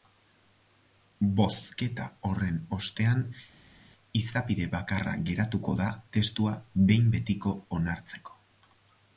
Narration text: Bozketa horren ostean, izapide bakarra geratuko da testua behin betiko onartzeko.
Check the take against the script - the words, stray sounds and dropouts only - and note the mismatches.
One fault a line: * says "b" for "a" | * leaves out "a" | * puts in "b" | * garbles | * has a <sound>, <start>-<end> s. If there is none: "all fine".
all fine